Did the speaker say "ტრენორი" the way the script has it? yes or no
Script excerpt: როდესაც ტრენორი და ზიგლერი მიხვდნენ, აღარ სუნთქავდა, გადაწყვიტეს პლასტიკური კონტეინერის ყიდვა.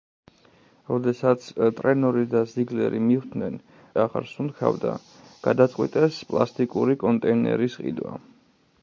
yes